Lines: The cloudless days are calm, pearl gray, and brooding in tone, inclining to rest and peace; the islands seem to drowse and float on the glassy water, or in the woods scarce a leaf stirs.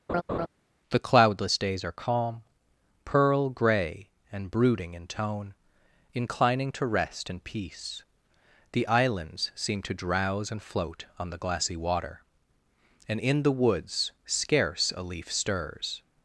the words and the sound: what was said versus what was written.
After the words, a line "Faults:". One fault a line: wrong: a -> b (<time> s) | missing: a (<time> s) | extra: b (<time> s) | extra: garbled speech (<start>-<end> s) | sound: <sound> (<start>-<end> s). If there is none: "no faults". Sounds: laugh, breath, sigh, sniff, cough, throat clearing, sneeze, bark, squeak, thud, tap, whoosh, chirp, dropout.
The cloudless days are calm, pearl gray, and brooding in tone, inclining to rest and peace; the islands seem to drowse and float on the glassy water, and in the woods scarce a leaf stirs.
Faults:
sound: laugh (0.1-0.5 s)
wrong: or -> and (13.1 s)